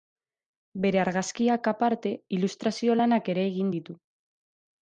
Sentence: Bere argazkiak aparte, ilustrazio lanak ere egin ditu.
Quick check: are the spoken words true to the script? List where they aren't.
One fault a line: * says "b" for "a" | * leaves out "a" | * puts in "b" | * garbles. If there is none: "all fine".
all fine